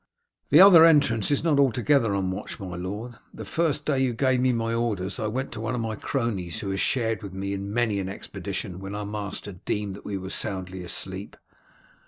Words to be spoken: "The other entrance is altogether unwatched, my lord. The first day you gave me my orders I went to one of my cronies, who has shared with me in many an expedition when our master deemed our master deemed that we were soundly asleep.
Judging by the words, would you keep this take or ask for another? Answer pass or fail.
fail